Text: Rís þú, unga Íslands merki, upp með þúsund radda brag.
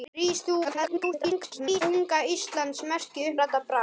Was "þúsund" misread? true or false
true